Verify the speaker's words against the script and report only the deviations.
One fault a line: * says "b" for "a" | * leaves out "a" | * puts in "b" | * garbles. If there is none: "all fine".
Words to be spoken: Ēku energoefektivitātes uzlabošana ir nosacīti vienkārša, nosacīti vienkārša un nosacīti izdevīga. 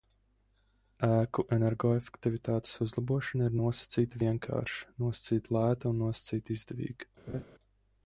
* says "lēta" for "vienkārša"